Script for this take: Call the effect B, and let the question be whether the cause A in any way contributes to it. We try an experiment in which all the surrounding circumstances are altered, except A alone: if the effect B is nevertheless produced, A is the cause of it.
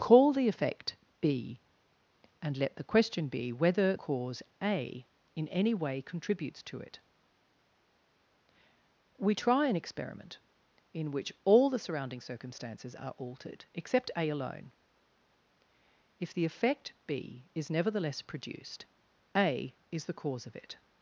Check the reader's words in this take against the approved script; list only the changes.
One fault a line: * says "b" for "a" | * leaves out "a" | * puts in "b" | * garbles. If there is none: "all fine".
* leaves out "the"